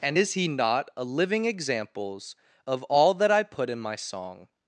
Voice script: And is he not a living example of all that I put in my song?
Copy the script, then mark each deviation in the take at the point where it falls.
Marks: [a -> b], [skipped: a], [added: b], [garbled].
And is he not a living [example -> examples] of all that I put in my song?